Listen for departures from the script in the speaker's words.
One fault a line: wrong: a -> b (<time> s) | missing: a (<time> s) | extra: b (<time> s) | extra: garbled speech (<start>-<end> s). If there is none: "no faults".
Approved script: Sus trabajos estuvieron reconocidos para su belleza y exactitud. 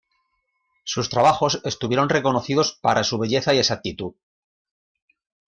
no faults